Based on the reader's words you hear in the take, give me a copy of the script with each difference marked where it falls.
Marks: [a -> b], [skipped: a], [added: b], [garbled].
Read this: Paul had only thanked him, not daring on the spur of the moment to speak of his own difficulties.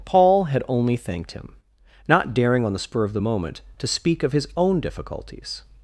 Paul had only thanked him, not daring on the spur of the moment to speak of his own difficulties.